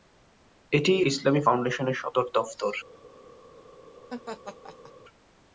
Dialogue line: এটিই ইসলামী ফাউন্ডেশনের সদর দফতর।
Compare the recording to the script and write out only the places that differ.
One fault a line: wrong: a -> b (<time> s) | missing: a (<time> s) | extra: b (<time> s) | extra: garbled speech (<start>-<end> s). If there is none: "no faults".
no faults